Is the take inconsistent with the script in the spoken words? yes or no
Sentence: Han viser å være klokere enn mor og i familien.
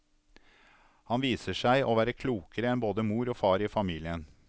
yes